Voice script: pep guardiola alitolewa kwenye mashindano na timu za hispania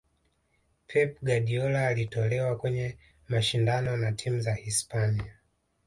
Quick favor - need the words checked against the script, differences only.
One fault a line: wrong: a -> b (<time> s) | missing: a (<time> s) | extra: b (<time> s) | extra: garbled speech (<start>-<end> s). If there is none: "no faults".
no faults